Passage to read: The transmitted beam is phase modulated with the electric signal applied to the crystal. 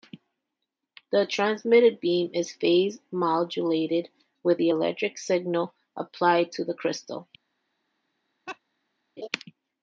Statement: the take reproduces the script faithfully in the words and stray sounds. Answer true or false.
false